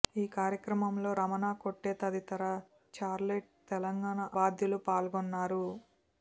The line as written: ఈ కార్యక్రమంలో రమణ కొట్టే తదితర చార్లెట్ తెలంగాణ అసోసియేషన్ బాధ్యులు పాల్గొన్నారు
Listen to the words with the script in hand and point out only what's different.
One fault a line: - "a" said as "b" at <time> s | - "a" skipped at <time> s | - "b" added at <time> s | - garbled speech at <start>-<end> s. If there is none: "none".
- "అసోసియేషన్" skipped at 4.2 s